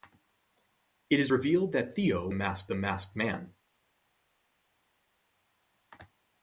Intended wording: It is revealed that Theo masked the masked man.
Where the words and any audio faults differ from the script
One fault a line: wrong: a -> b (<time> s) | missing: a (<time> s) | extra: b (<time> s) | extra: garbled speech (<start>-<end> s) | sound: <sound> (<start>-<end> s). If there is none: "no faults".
no faults